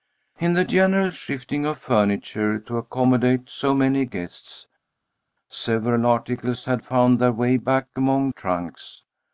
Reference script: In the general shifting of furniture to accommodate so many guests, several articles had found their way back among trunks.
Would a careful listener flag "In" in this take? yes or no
no